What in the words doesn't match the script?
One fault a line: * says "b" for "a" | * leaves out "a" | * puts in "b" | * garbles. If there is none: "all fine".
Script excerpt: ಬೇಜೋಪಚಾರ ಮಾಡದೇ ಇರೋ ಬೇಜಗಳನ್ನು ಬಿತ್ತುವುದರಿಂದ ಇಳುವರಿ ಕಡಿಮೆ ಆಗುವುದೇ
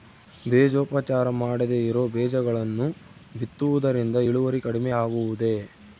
all fine